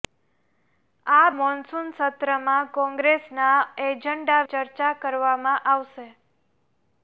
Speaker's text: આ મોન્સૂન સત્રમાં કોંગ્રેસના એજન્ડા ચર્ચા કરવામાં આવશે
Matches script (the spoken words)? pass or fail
pass